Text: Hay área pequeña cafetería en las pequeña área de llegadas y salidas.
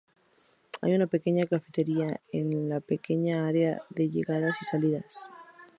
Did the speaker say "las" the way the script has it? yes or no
no